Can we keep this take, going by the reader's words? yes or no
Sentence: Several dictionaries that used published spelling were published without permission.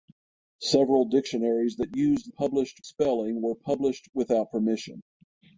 yes